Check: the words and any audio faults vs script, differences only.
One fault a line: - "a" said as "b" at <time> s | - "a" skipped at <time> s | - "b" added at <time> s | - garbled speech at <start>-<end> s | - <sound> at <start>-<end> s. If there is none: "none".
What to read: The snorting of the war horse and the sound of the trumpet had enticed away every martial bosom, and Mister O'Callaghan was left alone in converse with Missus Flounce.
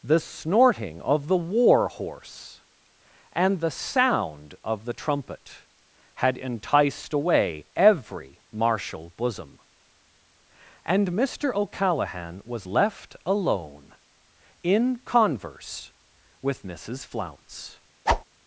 - whoosh at 18.1-18.2 s